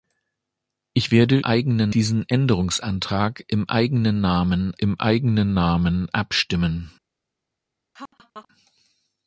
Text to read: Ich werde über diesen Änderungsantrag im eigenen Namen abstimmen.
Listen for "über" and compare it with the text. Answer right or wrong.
wrong